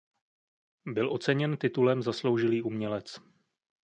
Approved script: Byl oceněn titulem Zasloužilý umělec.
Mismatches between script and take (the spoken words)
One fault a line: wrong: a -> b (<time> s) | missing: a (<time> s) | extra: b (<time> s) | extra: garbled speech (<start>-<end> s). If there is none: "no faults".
no faults